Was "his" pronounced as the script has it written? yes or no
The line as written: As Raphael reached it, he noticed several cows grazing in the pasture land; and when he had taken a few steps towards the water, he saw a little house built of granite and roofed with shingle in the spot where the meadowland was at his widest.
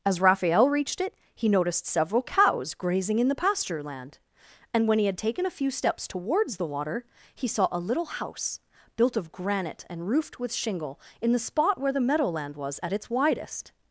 no